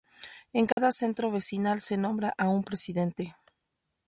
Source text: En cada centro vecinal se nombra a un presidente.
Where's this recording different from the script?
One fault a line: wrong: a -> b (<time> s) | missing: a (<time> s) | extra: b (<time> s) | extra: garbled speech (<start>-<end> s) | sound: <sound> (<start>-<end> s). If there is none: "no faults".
sound: dropout (0.7-0.8 s)